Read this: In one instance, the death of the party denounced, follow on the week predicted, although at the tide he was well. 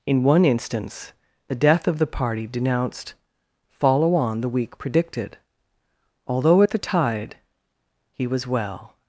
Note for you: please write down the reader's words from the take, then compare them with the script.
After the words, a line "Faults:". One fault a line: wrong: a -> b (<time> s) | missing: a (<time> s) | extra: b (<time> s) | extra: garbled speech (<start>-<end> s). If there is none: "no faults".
In one instance, the death of the party denounced, follow on the week predicted, although at the tide he was well.
Faults:
no faults